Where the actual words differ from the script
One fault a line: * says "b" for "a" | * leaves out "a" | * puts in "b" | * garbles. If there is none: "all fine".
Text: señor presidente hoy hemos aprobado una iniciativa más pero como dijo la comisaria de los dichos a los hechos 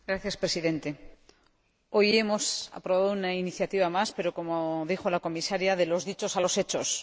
all fine